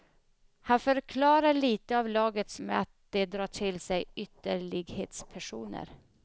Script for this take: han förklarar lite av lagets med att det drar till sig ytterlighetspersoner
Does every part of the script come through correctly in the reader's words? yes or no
yes